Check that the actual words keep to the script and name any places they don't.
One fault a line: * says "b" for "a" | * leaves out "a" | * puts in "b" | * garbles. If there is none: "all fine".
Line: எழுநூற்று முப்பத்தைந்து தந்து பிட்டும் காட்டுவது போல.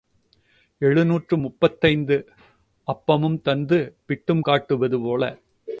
* puts in "அப்பமும்"